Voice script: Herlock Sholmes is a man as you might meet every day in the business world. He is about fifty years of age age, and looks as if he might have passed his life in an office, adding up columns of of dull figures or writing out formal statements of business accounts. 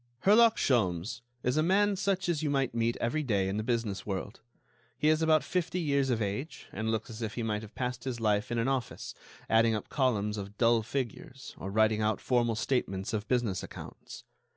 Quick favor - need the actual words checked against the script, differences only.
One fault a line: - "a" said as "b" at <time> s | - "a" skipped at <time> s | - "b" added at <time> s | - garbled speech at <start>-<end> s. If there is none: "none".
- "such" added at 1.9 s
- "age" skipped at 6.7 s
- "of" skipped at 10.6 s